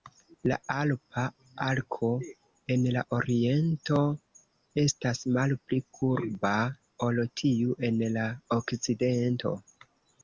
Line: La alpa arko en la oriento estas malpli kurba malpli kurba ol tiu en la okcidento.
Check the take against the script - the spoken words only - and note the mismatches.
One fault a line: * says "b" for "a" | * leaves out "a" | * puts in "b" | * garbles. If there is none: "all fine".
* leaves out "malpli kurba"